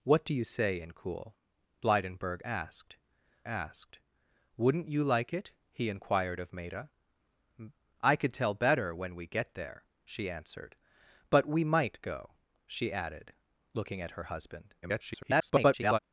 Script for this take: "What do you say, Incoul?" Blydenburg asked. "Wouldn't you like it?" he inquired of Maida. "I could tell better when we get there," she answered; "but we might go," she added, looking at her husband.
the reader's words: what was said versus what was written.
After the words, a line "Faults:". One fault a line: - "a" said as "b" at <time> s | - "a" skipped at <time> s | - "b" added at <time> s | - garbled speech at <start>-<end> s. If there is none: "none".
"What do you say, Incoul?" Blydenburg asked asked. "Wouldn't you like it?" he inquired of Maida. "I could tell better when we get there," she answered; "but we might go," she added, looking at her husband. [garbled]
Faults:
- "asked" added at 3.4 s
- garbled speech at 14.8-16.0 s